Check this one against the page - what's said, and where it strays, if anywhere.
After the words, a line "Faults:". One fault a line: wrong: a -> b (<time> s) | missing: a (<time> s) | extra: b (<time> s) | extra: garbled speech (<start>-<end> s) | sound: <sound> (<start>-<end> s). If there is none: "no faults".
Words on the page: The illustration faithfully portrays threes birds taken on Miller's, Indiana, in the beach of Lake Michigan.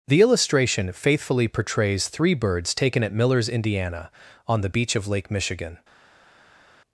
The illustration faithfully portrays three birds taken at Miller's, Indiana, on the beach of Lake Michigan.
Faults:
wrong: threes -> three (2.1 s)
wrong: on -> at (3.0 s)
wrong: in -> on (4.5 s)